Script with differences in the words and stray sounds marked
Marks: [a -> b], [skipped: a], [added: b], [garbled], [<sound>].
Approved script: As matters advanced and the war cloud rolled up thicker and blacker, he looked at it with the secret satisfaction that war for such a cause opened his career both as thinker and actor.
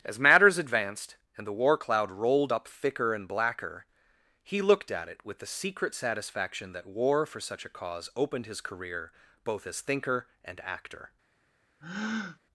As matters advanced and the war cloud rolled up thicker and blacker, he looked at it with the secret satisfaction that war for such a cause opened his career both as thinker and actor. [breath]